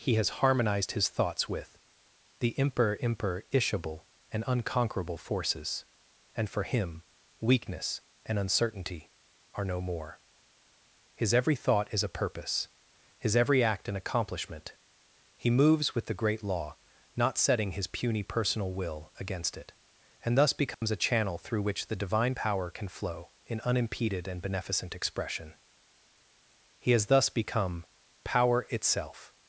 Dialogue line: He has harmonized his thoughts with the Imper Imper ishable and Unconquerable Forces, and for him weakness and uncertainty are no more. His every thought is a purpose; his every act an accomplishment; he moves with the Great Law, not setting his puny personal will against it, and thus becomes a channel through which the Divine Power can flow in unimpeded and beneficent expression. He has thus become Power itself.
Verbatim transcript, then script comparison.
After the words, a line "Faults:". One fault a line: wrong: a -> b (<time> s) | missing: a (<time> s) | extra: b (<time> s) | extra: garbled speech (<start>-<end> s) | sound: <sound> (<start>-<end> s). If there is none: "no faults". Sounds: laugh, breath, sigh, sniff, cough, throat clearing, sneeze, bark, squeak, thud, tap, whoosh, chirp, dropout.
He has harmonized his thoughts with the Imper Imper ishable and Unconquerable Forces, and for him weakness and uncertainty are no more. His every thought is a purpose; his every act an accomplishment; he moves with the Great Law, not setting his puny personal will against it, and thus becomes a channel through which the Divine Power can flow in unimpeded and beneficent expression. He has thus become Power itself.
Faults:
sound: dropout (20.7-20.8 s)